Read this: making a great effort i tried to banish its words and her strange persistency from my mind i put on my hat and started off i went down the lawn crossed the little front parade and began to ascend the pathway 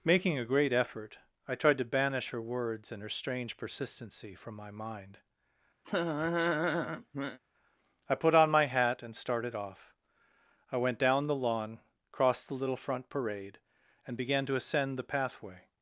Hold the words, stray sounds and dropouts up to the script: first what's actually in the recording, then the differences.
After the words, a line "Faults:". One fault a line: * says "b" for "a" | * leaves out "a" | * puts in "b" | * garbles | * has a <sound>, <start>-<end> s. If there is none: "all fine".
making a great effort i tried to banish her words and her strange persistency from my mind i put on my hat and started off i went down the lawn crossed the little front parade and began to ascend the pathway
Faults:
* says "her" for "its"
* has a laugh, 5.8-7.4 s